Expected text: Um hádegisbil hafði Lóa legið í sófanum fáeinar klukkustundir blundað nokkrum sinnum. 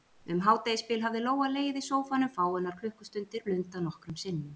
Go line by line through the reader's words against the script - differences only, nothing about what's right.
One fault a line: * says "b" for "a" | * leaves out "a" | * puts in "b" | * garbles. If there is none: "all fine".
all fine